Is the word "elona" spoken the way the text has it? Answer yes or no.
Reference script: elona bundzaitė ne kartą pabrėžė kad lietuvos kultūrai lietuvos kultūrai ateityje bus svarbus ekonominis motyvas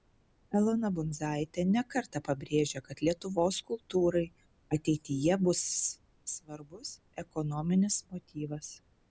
yes